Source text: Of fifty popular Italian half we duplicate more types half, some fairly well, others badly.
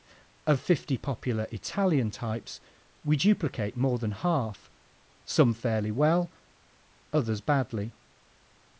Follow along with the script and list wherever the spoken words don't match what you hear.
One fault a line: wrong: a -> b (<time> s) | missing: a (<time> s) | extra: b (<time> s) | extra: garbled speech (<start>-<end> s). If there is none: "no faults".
wrong: half -> types (2.1 s)
wrong: types -> than (4.0 s)